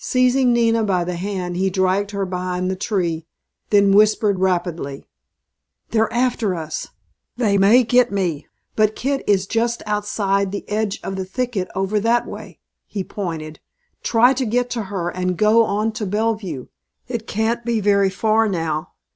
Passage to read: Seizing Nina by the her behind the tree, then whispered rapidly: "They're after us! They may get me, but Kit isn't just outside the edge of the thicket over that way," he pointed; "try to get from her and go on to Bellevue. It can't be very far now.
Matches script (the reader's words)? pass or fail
fail